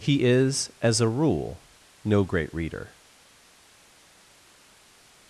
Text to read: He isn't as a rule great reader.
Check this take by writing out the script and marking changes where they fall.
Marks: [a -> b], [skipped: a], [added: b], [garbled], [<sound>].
He [isn't -> is] as a rule [added: no] great reader.